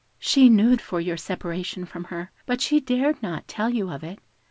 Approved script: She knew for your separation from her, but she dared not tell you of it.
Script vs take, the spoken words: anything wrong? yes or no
no